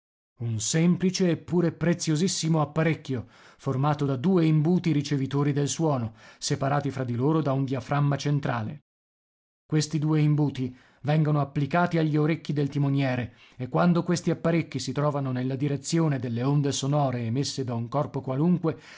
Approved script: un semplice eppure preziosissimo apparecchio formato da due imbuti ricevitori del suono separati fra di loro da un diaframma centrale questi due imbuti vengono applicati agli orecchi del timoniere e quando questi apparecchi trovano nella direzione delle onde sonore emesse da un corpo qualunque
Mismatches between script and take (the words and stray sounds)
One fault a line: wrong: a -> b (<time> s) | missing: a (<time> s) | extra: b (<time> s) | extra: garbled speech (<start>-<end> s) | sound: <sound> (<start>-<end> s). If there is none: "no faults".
extra: si (14.8 s)